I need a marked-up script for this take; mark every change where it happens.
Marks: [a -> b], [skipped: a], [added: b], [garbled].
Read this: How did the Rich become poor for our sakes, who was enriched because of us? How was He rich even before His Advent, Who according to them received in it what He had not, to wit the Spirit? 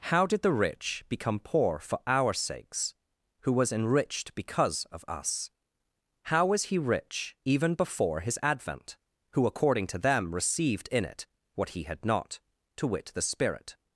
How did the Rich become poor for our sakes, who was enriched because of us? How was He rich even before His Advent, Who according to them received in it what He had not, to wit the Spirit?